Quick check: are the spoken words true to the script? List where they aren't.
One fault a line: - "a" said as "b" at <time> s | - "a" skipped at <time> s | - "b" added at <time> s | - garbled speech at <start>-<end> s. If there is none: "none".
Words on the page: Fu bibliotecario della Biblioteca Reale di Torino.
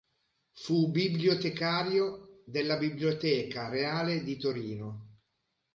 none